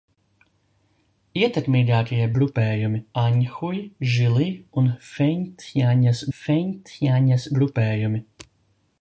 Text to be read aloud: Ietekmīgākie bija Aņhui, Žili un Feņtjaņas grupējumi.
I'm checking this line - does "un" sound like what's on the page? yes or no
yes